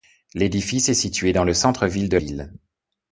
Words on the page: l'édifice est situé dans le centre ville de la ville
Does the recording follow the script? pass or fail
fail